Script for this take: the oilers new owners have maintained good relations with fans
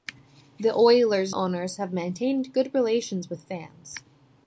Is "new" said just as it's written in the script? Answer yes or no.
no